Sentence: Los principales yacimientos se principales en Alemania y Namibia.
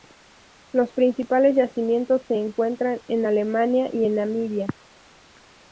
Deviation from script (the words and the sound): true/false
true